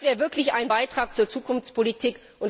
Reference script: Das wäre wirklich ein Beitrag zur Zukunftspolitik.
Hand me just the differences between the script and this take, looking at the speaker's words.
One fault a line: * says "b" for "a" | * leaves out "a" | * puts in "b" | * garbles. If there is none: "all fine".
all fine